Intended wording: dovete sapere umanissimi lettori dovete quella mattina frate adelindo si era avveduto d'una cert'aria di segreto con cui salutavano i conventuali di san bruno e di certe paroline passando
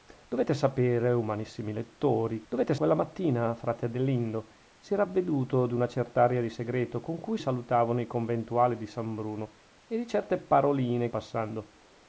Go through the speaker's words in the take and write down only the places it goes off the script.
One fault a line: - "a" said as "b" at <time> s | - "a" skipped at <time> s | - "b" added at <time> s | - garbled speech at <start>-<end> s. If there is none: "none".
none